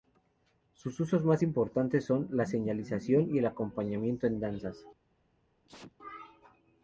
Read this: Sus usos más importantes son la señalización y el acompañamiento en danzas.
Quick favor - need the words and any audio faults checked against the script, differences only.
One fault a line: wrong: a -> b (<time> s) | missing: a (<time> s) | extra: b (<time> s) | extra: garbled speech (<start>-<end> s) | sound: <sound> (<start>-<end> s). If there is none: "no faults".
sound: sneeze (5.6-5.9 s)